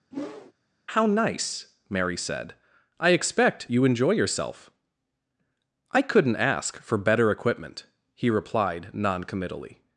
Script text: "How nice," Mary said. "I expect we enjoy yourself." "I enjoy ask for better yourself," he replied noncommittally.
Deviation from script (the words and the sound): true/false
true